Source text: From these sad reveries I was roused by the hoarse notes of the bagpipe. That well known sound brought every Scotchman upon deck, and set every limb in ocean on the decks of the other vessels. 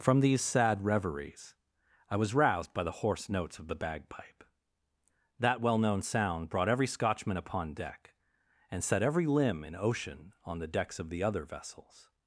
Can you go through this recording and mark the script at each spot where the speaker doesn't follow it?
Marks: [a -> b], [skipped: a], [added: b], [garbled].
From these sad reveries I was roused by the hoarse notes of the bagpipe. That well known sound brought every Scotchman upon deck, and set every limb in ocean on the decks of the other vessels.